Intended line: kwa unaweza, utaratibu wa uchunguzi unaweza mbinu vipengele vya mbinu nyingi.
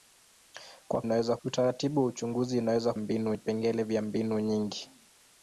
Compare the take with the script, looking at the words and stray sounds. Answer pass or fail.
pass